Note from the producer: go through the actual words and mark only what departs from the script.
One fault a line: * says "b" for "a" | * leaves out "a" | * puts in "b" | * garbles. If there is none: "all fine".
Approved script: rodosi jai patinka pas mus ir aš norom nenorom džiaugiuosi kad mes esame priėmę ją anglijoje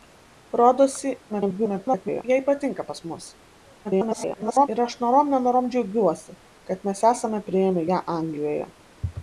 * garbles
* garbles